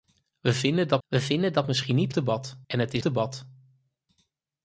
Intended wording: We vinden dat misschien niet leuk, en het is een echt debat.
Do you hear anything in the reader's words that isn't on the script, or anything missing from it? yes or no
yes